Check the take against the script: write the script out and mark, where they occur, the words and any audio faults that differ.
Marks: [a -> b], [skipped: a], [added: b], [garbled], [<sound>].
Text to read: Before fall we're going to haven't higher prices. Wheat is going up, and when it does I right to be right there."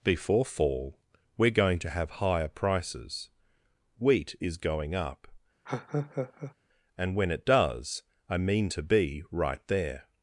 Before fall we're going to [haven't -> have] higher prices. Wheat is going up, [laugh] and when it does I [right -> mean] to be right there."